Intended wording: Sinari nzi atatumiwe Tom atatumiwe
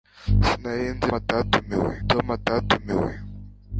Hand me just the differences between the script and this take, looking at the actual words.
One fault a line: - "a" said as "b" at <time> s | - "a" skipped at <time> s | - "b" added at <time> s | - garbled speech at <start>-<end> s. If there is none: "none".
none